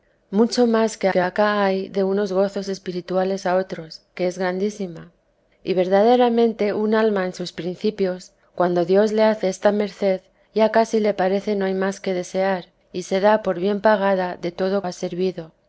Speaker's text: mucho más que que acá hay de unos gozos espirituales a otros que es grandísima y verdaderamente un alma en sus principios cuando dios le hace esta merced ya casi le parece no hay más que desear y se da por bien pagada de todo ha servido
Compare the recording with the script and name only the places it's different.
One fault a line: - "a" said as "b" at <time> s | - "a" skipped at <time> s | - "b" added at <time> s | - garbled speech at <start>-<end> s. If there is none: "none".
none